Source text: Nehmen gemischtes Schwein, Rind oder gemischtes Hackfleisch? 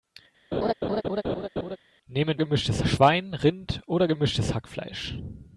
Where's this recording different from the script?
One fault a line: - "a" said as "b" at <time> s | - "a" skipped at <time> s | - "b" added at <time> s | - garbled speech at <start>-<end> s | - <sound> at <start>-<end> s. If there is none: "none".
- laugh at 0.5-1.8 s